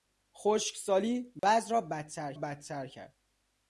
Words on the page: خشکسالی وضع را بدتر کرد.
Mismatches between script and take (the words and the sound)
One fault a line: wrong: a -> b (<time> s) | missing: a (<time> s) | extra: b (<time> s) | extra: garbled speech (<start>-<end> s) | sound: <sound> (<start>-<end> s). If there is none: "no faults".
sound: dropout (1.4-1.4 s)
extra: بدتر (2.3 s)